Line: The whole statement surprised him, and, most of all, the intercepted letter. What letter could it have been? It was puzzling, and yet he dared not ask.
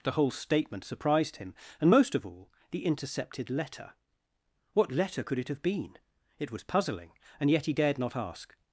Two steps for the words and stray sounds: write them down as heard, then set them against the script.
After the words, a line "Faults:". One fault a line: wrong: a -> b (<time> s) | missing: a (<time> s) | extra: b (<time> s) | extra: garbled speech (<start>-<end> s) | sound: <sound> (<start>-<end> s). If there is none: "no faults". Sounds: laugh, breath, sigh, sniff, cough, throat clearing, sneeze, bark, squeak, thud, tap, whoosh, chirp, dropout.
The whole statement surprised him, and, most of all, the intercepted letter. What letter could it have been? It was puzzling, and yet he dared not ask.
Faults:
no faults